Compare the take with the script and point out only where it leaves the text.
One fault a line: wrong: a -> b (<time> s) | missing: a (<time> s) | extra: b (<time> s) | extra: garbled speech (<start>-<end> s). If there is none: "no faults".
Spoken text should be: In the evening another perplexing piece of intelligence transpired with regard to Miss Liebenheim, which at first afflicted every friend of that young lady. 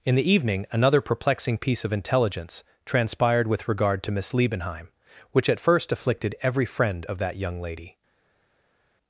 no faults